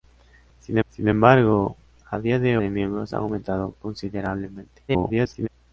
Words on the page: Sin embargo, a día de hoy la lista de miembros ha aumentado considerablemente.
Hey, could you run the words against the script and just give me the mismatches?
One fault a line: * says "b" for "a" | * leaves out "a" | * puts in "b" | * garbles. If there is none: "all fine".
* puts in "sin"
* leaves out "hoy la lista"
* garbles